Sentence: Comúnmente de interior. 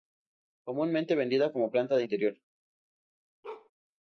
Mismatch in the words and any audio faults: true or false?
true